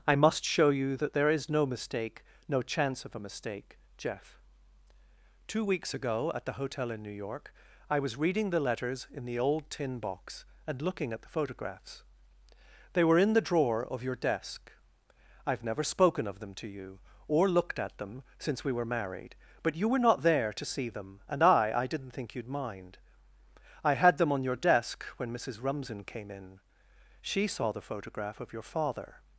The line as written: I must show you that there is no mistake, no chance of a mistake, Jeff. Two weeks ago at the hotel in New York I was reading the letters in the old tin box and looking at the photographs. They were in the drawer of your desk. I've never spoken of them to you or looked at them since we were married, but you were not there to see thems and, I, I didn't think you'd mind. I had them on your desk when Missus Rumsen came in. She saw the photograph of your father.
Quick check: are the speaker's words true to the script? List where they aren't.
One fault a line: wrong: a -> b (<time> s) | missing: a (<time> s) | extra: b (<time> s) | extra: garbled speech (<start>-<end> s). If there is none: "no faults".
wrong: thems -> them (20.9 s)